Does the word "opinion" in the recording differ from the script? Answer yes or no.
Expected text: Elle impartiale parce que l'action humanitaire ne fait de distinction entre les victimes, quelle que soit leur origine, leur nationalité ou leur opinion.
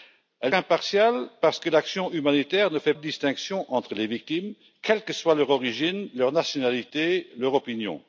no